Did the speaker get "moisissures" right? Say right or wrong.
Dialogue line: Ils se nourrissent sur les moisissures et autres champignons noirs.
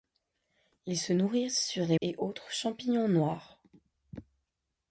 wrong